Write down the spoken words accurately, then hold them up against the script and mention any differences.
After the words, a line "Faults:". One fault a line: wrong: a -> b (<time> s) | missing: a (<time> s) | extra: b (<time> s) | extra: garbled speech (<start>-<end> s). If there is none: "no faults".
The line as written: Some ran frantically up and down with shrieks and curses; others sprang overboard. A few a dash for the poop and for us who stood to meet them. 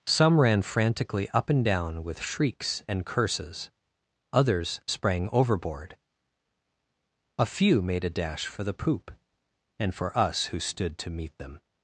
Some ran frantically up and down with shrieks and curses; others sprang overboard. A few made a dash for the poop and for us who stood to meet them.
Faults:
extra: made (7.8 s)